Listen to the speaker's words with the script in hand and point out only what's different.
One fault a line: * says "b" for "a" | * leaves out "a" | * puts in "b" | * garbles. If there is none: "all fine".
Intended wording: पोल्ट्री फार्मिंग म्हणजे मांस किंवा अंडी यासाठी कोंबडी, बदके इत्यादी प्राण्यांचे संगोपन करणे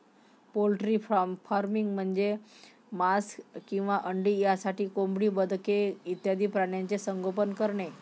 all fine